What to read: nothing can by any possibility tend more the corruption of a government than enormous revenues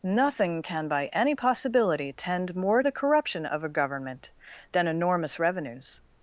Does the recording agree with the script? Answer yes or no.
yes